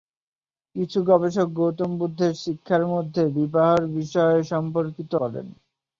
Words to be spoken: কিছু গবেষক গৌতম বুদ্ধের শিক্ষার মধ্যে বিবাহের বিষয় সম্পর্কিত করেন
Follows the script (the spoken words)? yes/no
yes